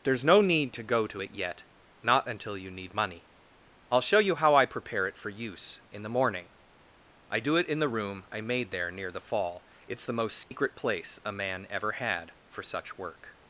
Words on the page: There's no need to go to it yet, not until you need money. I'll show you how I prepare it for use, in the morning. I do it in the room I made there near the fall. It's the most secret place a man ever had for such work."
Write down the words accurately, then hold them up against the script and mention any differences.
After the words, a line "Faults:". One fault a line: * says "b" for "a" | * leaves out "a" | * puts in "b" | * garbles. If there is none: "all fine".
There's no need to go to it yet, not until you need money. I'll show you how I prepare it for use, in the morning. I do it in the room I made there near the fall. It's the most secret place a man ever had for such work."
Faults:
all fine